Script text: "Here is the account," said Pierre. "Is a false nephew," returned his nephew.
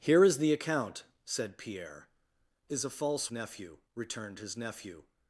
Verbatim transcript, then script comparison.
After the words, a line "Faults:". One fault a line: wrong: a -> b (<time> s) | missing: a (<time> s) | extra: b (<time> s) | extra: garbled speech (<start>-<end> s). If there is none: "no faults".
"Here is the account," said Pierre. "Is a false nephew," returned his nephew.
Faults:
no faults